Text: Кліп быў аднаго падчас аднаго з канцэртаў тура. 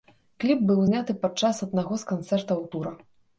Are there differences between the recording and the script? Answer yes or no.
yes